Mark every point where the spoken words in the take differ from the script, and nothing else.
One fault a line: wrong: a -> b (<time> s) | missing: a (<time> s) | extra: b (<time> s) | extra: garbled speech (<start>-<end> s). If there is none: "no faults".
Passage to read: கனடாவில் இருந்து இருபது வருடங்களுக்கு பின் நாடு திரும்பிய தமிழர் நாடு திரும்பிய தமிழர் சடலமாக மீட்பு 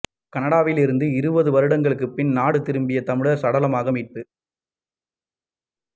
missing: நாடு திரும்பிய தமிழர் (3.4 s)